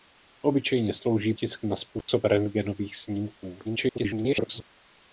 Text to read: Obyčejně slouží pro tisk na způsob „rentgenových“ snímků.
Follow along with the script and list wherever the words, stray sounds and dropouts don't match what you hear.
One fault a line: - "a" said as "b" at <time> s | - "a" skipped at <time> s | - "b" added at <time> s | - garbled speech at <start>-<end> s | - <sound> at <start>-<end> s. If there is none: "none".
- "pro" skipped at 1.3 s
- dropout at 2.0-2.1 s
- garbled speech at 3.6-4.6 s